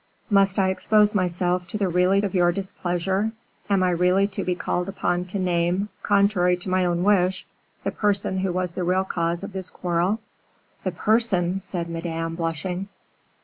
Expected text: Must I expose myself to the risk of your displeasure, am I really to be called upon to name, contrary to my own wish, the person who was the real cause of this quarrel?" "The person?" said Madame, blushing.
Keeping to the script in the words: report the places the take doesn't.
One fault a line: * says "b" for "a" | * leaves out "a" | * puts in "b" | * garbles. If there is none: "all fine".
* says "really" for "risk"